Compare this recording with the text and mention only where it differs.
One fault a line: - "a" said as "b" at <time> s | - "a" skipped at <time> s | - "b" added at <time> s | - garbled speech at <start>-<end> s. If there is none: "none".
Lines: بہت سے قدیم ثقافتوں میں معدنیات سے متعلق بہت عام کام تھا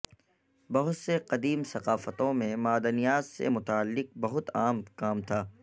none